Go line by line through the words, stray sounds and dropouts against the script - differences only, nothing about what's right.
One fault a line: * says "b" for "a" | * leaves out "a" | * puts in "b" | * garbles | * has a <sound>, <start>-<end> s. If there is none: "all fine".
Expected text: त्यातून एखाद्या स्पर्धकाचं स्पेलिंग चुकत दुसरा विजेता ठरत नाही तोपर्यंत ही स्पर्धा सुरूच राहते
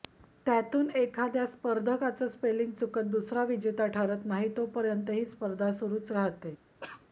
* has a cough, 6.8-7.1 s